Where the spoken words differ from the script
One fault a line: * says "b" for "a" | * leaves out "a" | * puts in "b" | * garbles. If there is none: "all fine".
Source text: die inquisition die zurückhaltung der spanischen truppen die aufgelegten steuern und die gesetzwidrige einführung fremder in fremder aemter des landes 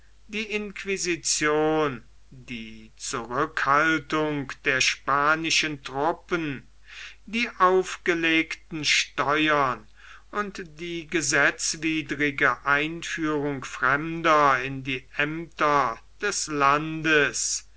* says "die" for "fremder"